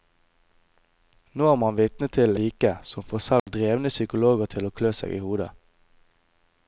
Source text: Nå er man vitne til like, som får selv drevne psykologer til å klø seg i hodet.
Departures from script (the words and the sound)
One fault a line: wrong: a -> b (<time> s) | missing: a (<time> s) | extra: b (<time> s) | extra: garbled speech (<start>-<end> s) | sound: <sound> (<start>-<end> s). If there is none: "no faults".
sound: dropout (3.4-3.5 s)